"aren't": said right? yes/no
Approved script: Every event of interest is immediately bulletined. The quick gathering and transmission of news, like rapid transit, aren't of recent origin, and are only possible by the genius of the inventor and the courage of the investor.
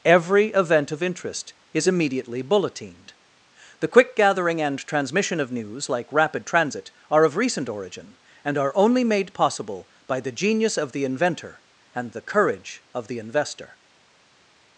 no